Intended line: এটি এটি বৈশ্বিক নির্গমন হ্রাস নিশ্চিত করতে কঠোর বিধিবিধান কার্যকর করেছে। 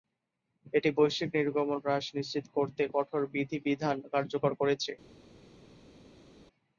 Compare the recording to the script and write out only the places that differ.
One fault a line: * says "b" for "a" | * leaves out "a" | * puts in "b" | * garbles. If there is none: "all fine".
* leaves out "এটি"